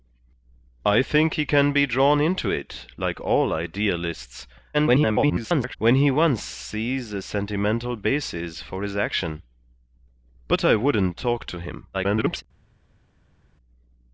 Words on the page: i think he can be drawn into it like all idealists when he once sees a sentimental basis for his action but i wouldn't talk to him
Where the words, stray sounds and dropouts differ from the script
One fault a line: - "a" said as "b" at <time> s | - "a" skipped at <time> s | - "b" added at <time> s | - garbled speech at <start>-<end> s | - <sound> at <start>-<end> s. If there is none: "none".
- garbled speech at 4.7-5.8 s
- garbled speech at 11.9-12.4 s